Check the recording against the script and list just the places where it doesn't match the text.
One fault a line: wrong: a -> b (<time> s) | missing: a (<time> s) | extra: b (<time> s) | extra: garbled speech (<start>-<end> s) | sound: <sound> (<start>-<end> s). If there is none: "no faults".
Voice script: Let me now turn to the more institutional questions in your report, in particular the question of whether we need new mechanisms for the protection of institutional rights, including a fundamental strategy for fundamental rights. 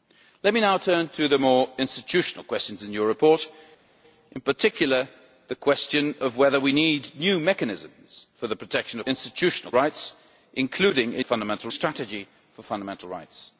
no faults